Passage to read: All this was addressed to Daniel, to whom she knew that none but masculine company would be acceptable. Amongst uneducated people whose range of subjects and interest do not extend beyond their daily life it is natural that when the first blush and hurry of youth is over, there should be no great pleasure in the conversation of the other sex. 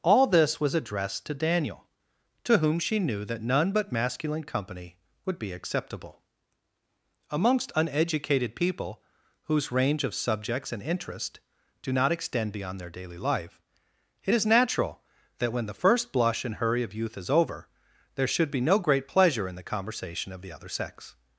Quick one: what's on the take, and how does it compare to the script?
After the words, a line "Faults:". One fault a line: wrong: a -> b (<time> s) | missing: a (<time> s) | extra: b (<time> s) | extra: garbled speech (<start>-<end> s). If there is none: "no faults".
All this was addressed to Daniel, to whom she knew that none but masculine company would be acceptable. Amongst uneducated people whose range of subjects and interest do not extend beyond their daily life it is natural that when the first blush and hurry of youth is over, there should be no great pleasure in the conversation of the other sex.
Faults:
no faults